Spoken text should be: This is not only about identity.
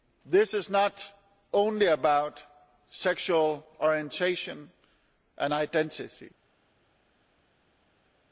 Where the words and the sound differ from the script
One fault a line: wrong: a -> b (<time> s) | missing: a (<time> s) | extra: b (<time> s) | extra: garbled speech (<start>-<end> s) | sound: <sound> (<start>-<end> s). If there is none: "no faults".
extra: sexual orientation and (2.9 s)